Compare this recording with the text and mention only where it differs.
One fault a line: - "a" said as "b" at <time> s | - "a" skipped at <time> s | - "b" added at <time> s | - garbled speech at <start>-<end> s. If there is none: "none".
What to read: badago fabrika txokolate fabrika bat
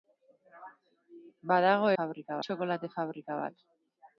none